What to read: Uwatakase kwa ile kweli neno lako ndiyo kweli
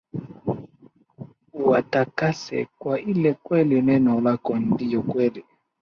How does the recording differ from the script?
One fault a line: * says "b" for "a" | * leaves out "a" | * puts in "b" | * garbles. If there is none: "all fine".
all fine